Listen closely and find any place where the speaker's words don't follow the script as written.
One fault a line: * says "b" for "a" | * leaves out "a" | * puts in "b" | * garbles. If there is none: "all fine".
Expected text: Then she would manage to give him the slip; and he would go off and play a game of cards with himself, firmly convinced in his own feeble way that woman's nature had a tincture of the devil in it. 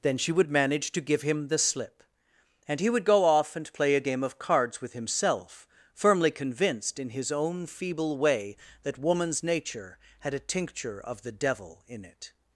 all fine